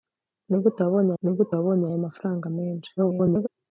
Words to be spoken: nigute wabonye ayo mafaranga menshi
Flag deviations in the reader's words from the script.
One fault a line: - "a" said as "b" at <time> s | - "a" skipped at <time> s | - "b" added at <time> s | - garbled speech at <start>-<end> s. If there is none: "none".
- "nigute wabonye" added at 1.2 s
- garbled speech at 3.0-3.5 s